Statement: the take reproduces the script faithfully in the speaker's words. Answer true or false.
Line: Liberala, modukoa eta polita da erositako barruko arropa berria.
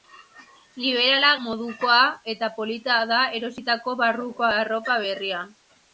true